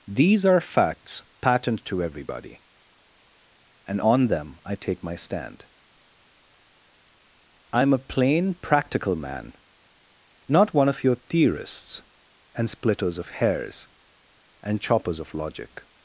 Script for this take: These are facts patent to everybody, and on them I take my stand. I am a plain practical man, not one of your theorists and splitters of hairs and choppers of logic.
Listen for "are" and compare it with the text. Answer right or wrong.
right